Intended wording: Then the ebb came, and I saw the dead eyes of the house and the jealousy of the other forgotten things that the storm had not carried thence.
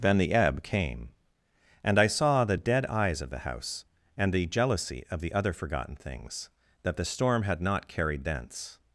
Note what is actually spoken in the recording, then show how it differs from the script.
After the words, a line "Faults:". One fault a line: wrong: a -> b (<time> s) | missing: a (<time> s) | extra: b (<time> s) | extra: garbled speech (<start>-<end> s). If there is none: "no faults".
Then the ebb came, and I saw the dead eyes of the house and the jealousy of the other forgotten things that the storm had not carried thence.
Faults:
no faults